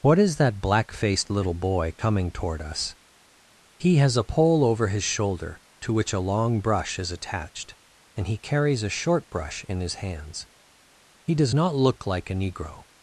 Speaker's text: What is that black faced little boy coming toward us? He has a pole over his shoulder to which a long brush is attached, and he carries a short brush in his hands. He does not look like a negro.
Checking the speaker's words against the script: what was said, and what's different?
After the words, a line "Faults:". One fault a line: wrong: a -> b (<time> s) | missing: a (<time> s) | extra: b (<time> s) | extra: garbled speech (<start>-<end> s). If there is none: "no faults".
What is that black faced little boy coming toward us? He has a pole over his shoulder to which a long brush is attached, and he carries a short brush in his hands. He does not look like a negro.
Faults:
no faults